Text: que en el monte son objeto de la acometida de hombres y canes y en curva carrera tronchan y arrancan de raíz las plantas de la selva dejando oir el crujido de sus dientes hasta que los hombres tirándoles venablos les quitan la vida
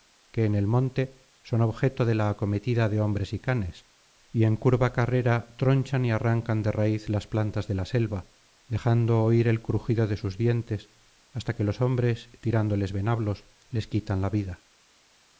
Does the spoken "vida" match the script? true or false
true